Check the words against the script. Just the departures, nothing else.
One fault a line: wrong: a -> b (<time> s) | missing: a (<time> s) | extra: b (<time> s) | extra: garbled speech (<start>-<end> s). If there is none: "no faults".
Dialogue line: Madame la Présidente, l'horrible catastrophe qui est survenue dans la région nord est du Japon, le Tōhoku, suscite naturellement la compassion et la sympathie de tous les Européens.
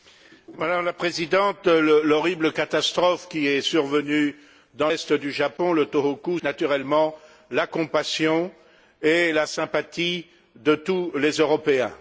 missing: la région nord (4.9 s)
missing: suscite (6.4 s)